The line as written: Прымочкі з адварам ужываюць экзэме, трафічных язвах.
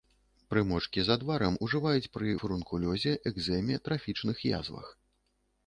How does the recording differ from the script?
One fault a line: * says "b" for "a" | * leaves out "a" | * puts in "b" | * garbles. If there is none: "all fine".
* puts in "пры фурункулёзе"